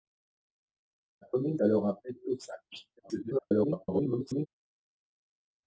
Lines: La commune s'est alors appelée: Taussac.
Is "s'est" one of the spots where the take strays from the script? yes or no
yes